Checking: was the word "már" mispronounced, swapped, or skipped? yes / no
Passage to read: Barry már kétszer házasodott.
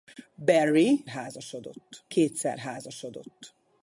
yes